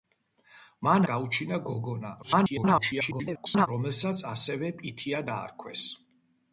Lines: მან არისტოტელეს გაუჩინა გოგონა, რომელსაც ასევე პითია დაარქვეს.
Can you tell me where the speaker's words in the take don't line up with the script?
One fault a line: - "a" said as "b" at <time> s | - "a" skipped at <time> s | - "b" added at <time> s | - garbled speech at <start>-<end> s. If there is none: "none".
- "არისტოტელეს" skipped at 1.1 s
- garbled speech at 2.2-3.7 s